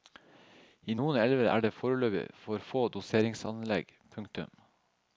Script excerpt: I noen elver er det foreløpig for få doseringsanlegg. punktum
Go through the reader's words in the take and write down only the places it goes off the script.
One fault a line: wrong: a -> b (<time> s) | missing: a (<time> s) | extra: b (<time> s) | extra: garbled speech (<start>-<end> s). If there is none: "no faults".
no faults